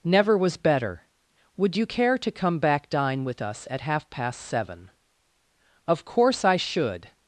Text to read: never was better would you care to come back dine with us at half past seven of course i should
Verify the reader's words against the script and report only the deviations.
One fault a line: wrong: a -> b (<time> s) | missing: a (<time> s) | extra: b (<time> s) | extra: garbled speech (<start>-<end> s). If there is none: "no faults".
no faults